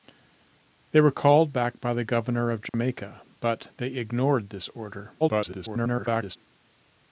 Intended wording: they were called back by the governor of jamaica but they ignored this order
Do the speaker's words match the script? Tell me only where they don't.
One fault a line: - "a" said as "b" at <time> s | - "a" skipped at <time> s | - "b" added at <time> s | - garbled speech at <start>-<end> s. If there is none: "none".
- garbled speech at 5.2-6.4 s